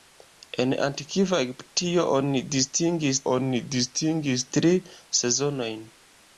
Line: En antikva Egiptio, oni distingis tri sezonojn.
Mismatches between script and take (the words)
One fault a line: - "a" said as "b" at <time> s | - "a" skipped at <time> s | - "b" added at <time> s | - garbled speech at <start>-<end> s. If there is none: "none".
- "oni distingis" added at 3.3 s